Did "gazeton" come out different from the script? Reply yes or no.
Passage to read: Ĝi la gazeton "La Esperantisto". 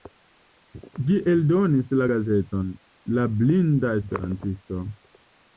no